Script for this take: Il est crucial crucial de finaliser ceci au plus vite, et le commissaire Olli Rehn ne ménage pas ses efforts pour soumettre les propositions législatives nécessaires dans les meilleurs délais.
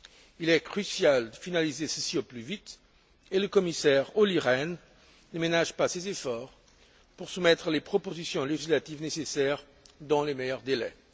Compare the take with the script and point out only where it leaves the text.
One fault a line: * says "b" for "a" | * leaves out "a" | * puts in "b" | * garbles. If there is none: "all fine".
* leaves out "crucial"